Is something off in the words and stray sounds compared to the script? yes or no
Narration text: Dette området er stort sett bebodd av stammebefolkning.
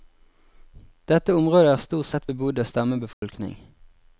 yes